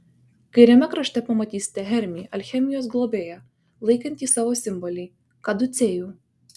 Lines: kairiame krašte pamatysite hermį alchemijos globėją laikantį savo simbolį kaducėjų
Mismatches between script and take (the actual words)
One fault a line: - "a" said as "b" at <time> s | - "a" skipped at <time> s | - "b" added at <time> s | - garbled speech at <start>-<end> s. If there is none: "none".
none